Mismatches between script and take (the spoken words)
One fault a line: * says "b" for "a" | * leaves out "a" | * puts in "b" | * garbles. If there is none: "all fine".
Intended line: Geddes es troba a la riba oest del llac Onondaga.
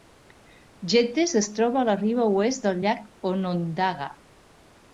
all fine